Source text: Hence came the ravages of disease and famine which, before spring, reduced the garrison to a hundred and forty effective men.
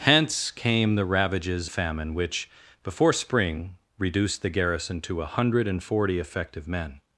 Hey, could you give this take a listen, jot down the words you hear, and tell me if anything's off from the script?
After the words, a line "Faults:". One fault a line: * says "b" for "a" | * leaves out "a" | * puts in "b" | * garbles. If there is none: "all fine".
Hence came the ravages famine which, before spring, reduced the garrison to a hundred and forty effective men.
Faults:
* leaves out "of disease and"